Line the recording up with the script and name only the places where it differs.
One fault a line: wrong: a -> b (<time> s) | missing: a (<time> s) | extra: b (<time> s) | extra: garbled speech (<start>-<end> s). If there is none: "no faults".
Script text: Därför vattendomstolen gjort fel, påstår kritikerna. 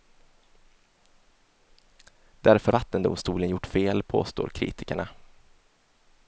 no faults